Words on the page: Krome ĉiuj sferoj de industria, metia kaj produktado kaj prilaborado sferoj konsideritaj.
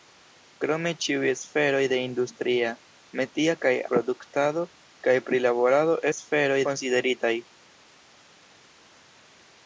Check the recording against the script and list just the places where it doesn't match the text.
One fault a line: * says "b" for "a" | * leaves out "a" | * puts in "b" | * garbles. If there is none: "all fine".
all fine